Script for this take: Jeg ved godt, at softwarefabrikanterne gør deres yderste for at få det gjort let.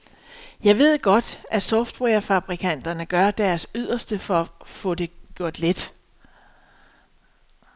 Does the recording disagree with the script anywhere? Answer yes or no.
no